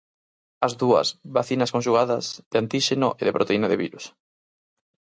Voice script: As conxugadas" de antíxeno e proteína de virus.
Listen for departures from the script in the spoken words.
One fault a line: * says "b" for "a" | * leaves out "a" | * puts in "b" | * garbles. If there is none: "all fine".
* puts in "dúas vacinas"
* puts in "de"